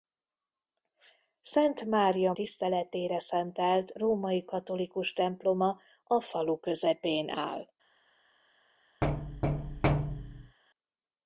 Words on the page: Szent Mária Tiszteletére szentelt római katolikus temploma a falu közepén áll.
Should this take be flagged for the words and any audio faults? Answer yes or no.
yes